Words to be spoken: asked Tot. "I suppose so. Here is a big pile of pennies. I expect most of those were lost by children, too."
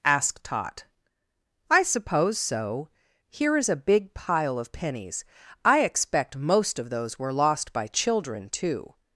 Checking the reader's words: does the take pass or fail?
pass